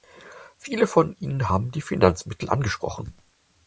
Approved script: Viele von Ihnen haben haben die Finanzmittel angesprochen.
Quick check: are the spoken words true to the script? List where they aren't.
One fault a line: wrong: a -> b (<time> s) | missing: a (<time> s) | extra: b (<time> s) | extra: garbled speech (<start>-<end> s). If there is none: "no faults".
missing: haben (1.7 s)